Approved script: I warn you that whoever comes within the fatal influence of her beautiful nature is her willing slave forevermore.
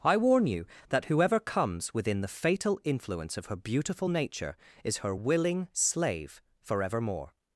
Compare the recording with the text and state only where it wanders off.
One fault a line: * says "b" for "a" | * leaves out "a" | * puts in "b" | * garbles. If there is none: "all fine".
all fine